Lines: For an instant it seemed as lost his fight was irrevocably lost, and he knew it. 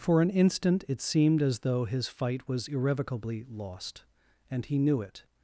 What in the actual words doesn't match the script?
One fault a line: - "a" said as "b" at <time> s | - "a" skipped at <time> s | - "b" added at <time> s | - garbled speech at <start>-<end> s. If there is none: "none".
- "lost" said as "though" at 1.6 s